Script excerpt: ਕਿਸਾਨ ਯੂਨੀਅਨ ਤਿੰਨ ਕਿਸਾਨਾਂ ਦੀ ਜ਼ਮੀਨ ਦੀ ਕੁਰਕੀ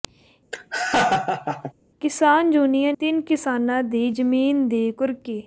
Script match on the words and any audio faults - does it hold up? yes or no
no